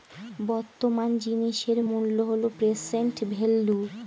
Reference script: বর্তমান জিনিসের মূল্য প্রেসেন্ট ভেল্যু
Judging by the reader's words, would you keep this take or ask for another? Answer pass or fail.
fail